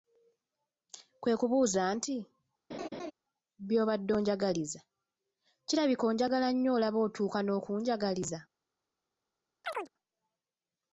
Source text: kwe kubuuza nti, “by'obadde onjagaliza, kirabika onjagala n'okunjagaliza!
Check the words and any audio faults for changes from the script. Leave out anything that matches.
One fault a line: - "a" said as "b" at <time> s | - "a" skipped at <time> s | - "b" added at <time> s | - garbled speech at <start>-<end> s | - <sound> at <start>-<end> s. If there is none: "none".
- laugh at 2.7-3.1 s
- "nnyo olaba otuuka" added at 6.5 s
- chirp at 9.6-9.9 s